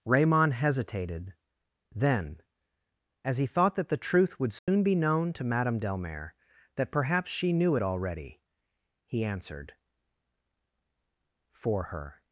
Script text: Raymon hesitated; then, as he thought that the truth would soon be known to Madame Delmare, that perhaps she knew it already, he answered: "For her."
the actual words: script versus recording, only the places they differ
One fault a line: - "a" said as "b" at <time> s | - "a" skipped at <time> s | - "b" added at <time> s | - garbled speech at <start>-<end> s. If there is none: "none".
none